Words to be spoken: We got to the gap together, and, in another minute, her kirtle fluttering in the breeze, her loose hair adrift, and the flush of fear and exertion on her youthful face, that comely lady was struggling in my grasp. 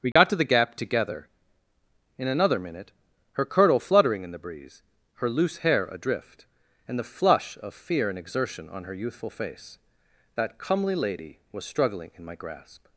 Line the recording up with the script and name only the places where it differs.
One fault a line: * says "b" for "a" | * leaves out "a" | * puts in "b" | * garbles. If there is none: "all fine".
* leaves out "and"